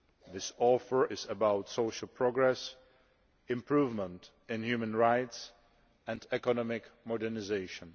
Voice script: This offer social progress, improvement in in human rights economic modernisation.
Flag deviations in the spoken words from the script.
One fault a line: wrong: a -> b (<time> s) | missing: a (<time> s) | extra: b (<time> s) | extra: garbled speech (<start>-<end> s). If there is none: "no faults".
extra: is about (1.1 s)
missing: in (4.6 s)
extra: and (6.1 s)